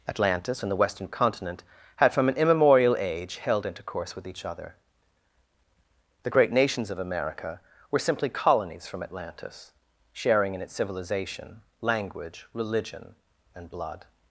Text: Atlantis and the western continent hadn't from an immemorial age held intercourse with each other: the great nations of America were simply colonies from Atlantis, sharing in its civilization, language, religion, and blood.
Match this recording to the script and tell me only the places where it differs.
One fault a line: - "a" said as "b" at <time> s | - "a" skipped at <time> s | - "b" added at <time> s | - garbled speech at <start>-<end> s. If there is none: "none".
- "hadn't" said as "had" at 2.0 s